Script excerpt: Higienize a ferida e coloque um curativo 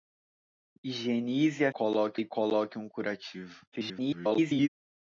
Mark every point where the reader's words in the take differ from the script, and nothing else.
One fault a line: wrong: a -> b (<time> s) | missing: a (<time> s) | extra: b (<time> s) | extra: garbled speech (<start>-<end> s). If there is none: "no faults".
wrong: ferida -> coloque (1.7 s)
extra: garbled speech (3.7-4.7 s)